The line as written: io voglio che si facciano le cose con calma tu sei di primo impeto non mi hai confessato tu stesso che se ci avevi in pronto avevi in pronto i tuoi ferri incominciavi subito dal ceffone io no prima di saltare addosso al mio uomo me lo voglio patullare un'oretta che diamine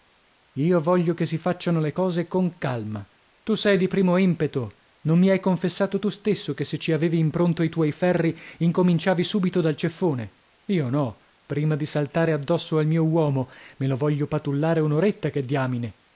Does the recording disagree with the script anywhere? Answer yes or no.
yes